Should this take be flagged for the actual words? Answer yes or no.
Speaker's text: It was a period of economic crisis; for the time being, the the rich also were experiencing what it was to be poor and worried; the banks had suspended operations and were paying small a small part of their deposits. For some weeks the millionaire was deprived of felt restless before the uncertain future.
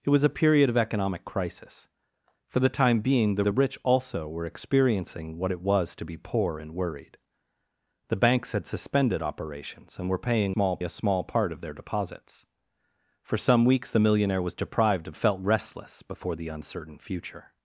no